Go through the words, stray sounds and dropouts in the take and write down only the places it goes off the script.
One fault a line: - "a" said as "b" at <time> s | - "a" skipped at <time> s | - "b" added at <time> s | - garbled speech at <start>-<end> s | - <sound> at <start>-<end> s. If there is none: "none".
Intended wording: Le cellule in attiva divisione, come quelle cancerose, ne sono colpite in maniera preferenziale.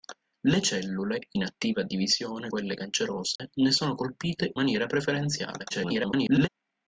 - "come" skipped at 2.5 s
- dropout at 3.4-3.4 s
- "in" skipped at 4.5 s
- garbled speech at 5.7-6.5 s